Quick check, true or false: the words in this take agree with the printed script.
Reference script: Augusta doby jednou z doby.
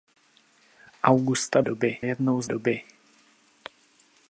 true